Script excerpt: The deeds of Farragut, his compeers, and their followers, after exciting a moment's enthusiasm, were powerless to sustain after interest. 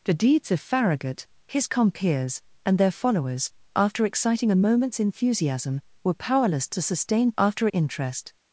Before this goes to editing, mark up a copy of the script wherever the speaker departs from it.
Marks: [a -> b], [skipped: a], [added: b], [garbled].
The deeds of Farragut, his compeers, and their followers, after exciting a moment's enthusiasm, were powerless to sustain after interest.